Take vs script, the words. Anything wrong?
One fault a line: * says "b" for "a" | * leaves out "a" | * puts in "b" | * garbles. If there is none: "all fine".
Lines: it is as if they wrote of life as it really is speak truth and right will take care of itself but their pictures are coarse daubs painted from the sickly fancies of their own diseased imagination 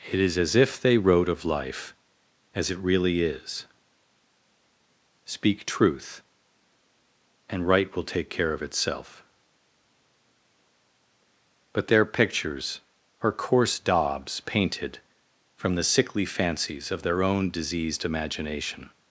all fine